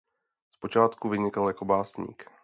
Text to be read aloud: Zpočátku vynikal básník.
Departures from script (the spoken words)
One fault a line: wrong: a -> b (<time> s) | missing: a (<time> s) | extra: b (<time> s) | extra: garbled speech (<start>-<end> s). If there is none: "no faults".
extra: jako (1.5 s)